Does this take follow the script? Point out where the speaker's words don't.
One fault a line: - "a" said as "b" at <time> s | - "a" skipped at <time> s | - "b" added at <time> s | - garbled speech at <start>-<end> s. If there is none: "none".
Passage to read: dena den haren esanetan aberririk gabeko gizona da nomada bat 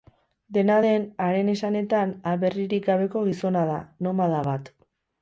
none